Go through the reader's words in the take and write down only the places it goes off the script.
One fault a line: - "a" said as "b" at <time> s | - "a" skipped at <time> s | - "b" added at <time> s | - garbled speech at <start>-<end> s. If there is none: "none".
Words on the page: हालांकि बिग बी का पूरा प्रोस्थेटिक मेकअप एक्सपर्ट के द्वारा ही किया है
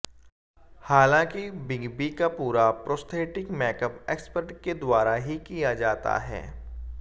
- "जाता" added at 5.7 s